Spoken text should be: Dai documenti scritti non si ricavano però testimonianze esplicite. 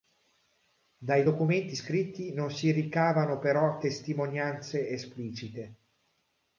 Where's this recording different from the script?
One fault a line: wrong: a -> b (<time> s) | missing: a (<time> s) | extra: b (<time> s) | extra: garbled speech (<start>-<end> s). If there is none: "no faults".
no faults